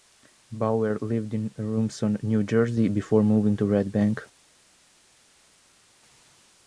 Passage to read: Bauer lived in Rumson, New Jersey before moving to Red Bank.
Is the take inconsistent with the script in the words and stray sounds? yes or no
no